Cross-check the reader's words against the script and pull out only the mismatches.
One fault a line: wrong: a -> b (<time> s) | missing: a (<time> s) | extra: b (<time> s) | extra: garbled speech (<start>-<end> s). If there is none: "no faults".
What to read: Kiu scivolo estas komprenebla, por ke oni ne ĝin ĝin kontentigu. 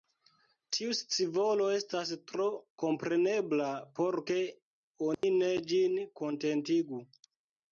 wrong: Kiu -> Tiu (0.8 s)
extra: tro (2.3 s)
missing: ĝin (6.0 s)